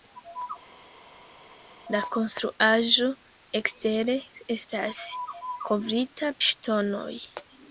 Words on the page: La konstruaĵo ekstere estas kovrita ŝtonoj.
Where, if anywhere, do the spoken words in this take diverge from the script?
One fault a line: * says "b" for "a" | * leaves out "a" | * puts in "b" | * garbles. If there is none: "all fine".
all fine